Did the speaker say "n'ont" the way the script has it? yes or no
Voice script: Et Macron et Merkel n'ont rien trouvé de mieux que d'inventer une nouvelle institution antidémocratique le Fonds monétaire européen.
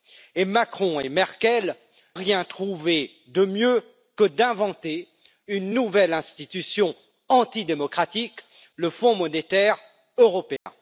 no